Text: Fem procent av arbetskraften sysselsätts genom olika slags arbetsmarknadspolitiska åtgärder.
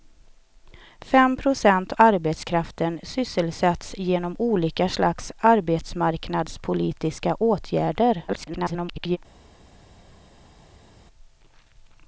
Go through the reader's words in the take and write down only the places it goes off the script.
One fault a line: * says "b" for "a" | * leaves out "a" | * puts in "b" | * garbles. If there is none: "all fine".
* leaves out "av"
* garbles